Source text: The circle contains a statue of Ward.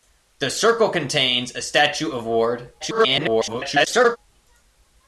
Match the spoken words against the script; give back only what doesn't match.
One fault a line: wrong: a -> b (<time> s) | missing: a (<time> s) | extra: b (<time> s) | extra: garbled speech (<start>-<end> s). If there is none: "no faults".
extra: garbled speech (2.8-4.2 s)